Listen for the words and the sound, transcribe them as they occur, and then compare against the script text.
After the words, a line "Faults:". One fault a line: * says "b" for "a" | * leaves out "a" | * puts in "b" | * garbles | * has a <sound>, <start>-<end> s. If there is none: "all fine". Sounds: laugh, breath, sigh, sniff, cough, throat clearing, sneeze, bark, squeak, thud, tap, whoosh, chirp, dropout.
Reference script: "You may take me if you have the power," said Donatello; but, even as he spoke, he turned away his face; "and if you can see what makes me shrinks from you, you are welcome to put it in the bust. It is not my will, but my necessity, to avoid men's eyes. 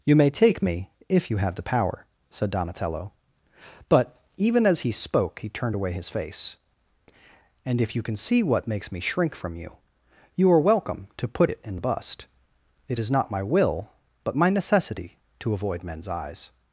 "You may take me if you have the power," said Donatello; but, even as he spoke, he turned away his face; "and if you can see what makes me shrink from you, you are welcome to put it in the bust. It is not my will, but my necessity, to avoid men's eyes.
Faults:
* says "shrink" for "shrinks"